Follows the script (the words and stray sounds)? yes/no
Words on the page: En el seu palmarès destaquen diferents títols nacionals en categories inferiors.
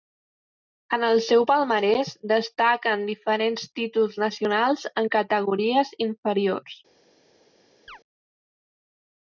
no